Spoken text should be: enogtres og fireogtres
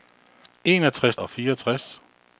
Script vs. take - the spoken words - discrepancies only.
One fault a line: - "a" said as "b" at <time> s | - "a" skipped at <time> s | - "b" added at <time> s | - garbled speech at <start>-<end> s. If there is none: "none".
none